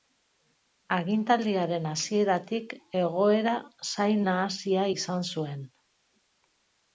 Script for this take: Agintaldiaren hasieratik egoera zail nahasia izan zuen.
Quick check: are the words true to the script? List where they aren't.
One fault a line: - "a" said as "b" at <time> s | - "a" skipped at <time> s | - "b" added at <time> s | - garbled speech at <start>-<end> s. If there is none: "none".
none